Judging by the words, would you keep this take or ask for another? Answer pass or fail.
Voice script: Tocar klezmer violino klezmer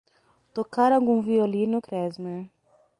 fail